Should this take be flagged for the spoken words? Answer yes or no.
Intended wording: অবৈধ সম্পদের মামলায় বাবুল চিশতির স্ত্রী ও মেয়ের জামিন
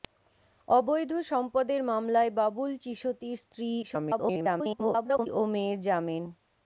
yes